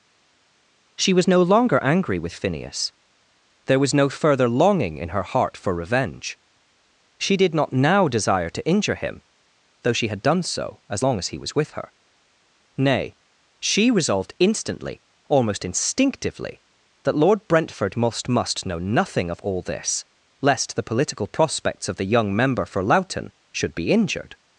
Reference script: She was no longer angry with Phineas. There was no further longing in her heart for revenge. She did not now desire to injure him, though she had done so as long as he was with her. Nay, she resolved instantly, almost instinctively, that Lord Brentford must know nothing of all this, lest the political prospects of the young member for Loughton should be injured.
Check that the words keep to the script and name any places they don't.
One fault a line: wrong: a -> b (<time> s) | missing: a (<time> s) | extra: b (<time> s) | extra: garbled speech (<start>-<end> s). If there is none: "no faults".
extra: must (18.3 s)